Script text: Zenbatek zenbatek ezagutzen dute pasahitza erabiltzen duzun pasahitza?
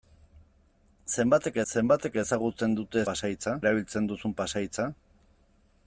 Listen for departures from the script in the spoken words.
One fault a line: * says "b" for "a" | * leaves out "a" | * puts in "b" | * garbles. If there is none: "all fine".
all fine